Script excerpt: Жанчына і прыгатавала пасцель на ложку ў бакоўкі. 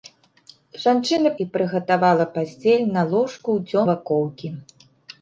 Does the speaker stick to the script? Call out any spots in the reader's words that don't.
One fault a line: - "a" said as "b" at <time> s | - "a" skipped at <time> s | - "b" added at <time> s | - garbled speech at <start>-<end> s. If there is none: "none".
none